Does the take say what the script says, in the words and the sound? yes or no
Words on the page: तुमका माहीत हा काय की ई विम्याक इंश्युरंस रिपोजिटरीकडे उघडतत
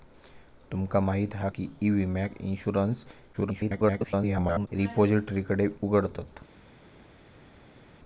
no